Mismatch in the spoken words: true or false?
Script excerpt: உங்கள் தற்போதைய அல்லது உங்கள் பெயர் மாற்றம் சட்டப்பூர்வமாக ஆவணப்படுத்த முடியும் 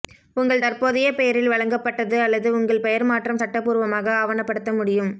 true